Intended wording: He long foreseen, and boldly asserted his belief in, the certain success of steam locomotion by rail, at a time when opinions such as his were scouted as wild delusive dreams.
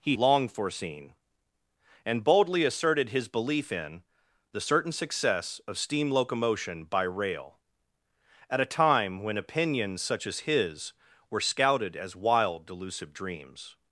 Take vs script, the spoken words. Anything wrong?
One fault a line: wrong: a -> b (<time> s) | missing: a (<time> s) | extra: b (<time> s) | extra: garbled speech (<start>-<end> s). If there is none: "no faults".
no faults